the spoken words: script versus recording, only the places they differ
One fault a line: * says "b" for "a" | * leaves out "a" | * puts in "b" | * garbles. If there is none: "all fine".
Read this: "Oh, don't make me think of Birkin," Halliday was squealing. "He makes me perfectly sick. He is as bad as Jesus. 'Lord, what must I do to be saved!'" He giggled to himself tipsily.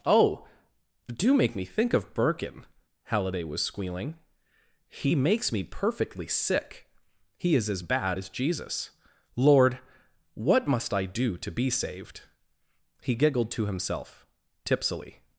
* says "do" for "don't"